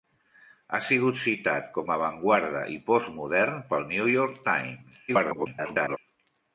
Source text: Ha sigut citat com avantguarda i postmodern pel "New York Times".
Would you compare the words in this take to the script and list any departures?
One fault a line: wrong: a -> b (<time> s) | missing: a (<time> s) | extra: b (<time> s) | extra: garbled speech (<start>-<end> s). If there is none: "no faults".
extra: garbled speech (5.1-6.0 s)